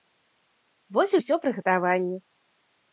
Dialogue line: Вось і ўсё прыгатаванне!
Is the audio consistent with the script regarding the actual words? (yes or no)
yes